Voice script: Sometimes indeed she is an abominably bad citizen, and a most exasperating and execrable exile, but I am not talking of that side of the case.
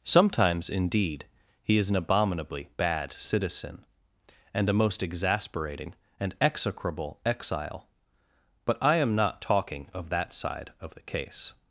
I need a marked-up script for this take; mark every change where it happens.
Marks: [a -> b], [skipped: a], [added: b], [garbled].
Sometimes indeed [she -> he] is an abominably bad citizen, and a most exasperating and execrable exile, but I am not talking of that side of the case.